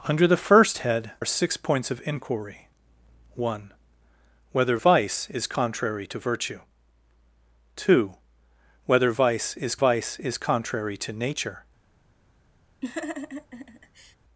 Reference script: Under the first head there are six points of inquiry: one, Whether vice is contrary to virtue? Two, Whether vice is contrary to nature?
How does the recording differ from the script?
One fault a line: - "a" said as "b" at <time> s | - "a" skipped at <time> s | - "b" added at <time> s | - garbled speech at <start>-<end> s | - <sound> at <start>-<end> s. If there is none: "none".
- "there" skipped at 1.1 s
- "vice is" added at 9.7 s
- laugh at 12.8-14.2 s